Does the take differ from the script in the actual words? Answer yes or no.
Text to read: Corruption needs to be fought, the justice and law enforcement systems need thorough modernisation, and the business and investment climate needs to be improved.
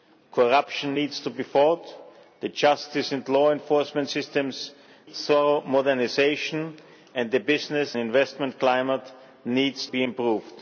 yes